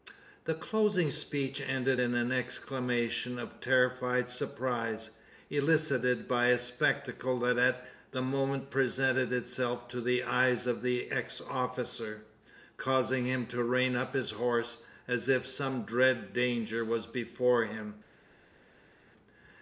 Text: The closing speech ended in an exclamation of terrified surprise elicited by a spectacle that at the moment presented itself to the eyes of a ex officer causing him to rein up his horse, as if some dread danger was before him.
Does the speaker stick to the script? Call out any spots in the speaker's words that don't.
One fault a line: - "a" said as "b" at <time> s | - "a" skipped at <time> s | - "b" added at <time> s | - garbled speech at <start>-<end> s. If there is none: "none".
- "a" said as "the" at 10.8 s